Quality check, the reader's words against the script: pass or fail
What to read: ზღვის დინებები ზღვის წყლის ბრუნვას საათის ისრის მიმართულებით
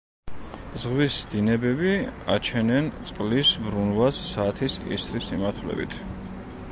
fail